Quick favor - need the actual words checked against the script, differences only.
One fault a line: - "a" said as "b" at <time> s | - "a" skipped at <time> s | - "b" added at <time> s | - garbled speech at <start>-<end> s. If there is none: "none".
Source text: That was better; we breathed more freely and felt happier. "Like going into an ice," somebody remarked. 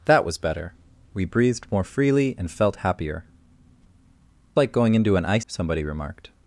none